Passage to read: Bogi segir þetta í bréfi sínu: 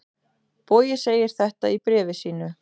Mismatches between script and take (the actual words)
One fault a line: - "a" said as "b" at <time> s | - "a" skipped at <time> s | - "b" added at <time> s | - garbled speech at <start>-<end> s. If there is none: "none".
none